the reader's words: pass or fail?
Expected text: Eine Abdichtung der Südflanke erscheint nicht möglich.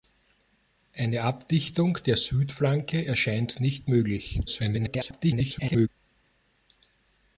fail